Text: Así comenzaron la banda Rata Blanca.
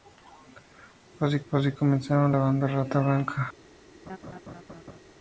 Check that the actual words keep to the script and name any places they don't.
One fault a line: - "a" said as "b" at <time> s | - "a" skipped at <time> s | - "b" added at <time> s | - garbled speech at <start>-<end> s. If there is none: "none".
- "así" added at 1.5 s